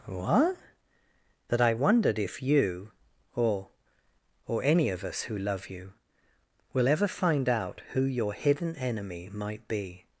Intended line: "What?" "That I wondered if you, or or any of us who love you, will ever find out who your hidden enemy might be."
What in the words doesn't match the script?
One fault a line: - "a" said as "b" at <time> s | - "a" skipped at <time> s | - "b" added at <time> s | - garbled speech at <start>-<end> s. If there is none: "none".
none